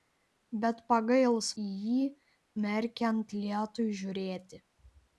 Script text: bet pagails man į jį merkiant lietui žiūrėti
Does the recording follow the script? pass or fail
fail